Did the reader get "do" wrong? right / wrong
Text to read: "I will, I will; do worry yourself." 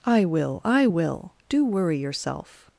right